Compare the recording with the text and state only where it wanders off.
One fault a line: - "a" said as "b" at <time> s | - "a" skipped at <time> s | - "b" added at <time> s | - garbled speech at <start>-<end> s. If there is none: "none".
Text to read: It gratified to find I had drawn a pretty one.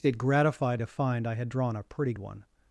none